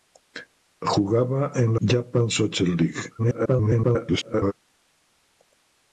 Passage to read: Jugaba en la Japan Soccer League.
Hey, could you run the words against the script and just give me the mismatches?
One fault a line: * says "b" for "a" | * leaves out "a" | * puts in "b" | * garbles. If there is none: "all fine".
* leaves out "la"
* garbles